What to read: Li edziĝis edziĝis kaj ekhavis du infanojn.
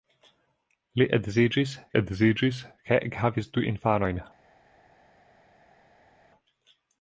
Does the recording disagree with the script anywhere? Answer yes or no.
no